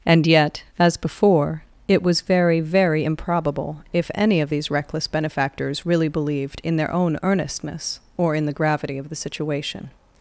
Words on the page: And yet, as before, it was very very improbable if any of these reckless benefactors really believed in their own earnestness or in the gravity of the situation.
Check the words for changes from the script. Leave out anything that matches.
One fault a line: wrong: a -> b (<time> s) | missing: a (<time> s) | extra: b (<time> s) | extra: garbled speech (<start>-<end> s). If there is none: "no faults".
no faults